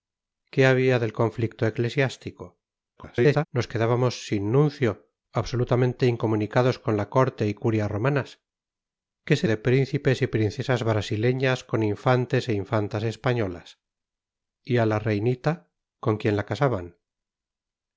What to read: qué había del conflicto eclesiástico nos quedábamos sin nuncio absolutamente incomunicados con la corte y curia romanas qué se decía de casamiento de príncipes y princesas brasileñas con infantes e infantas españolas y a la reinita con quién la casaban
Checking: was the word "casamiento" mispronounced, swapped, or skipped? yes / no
yes